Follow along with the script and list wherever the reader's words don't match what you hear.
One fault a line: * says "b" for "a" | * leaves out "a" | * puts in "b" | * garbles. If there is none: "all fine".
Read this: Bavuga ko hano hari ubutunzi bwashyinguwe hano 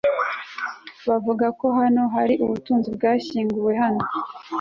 all fine